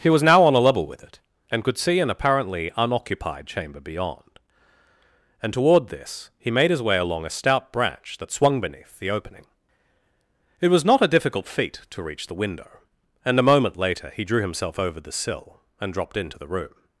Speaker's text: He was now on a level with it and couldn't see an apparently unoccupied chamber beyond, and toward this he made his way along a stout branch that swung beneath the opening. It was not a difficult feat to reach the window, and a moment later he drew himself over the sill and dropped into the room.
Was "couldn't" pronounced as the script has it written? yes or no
no